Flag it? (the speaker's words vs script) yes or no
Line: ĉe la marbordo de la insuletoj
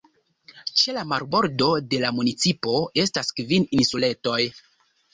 yes